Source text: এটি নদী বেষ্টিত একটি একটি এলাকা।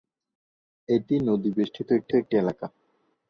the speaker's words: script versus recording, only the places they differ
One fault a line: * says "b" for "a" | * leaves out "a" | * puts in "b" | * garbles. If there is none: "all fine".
all fine